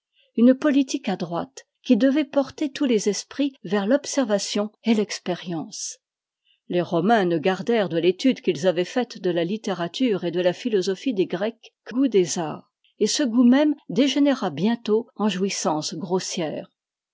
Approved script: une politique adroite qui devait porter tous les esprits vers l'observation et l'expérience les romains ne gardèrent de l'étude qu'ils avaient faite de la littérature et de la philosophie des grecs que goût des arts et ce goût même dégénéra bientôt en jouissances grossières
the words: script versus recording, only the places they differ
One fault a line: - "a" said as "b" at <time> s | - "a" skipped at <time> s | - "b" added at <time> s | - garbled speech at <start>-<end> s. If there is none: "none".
none